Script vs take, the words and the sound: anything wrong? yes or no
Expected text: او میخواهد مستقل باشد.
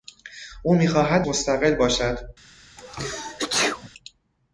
yes